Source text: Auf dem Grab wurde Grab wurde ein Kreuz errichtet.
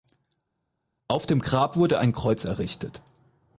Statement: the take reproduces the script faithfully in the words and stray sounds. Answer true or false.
false